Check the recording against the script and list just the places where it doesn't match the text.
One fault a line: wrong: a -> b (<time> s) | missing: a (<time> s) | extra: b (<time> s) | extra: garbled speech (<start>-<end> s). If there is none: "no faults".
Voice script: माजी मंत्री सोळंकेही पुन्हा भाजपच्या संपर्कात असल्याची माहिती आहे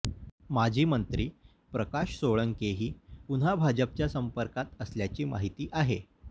extra: प्रकाश (1.7 s)